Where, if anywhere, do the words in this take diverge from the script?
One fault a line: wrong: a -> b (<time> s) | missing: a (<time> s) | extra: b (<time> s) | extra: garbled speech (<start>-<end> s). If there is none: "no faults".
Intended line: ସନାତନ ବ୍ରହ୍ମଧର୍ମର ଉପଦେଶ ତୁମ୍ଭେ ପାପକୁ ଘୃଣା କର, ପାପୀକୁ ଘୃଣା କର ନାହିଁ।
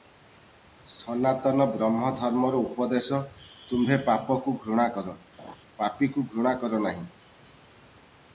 no faults